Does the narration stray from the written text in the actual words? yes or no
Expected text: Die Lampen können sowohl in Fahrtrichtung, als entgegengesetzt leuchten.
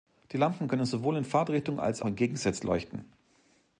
no